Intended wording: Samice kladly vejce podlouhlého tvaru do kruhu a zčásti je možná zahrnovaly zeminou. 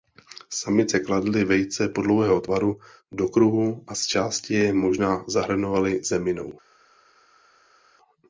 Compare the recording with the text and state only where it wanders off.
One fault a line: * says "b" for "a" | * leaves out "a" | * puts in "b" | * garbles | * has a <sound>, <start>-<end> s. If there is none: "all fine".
all fine